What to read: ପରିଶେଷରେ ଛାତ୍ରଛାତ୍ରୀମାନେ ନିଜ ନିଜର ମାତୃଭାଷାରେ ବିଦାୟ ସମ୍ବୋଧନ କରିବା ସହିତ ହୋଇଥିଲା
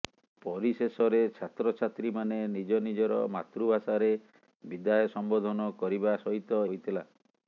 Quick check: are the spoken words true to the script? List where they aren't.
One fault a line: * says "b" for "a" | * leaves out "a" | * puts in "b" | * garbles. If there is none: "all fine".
all fine